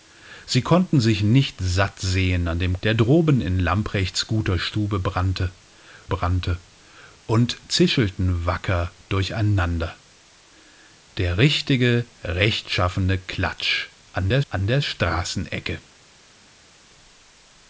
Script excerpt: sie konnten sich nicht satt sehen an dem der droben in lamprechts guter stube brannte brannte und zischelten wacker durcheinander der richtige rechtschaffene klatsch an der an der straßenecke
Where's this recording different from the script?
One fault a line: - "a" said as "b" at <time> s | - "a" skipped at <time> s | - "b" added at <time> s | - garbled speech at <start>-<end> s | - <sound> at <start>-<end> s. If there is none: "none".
none